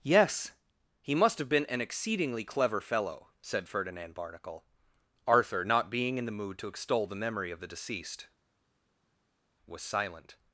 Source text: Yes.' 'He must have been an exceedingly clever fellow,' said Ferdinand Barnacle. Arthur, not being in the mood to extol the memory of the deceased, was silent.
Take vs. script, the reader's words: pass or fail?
pass